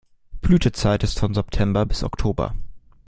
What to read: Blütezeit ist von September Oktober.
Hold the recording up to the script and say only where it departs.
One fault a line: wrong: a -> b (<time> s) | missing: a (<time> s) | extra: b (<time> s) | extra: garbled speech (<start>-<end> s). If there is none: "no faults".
extra: bis (1.9 s)